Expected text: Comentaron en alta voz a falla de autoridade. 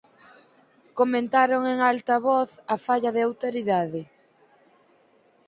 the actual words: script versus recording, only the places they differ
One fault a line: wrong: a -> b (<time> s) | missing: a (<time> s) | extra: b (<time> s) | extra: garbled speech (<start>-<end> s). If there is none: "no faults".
no faults